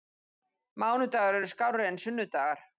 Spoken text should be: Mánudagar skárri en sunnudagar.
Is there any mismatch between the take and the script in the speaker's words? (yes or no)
yes